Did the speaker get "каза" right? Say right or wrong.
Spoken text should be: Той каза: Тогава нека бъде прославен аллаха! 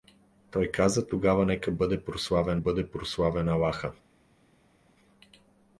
right